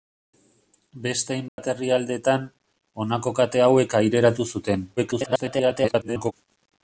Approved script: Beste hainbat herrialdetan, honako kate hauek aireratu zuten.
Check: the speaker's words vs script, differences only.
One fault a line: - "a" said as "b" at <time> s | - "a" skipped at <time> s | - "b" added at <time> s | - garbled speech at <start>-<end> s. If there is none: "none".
- garbled speech at 5.0-6.3 s